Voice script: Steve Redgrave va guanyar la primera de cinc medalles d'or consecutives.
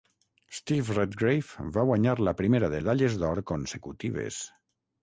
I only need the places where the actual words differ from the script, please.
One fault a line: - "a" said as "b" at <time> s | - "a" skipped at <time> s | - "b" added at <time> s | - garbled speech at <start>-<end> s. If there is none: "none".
- "cinc" skipped at 2.8 s